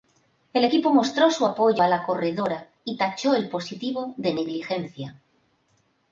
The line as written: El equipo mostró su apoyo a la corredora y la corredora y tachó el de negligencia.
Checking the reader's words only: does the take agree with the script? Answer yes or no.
no